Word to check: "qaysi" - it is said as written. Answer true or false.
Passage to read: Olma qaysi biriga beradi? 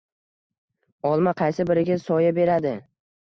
true